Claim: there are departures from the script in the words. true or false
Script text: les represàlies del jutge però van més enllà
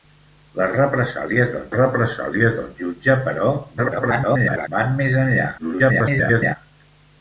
true